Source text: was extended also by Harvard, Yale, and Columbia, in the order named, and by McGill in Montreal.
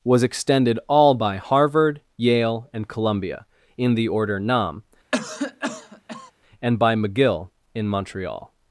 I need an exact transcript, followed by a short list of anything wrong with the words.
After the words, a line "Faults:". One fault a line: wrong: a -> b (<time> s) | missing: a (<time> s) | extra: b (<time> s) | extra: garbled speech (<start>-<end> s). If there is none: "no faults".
was extended all by Harvard, Yale, and Columbia, in the order nam, and by McGill in Montreal.
Faults:
wrong: also -> all (0.9 s)
wrong: named -> nam (4.4 s)